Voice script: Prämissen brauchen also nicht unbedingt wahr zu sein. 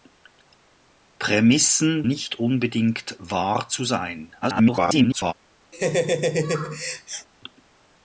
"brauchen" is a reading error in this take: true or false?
true